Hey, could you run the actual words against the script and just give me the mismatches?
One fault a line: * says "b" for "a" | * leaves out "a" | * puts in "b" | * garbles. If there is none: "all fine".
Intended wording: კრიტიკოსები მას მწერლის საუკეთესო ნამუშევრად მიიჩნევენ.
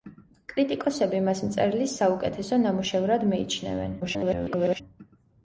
* garbles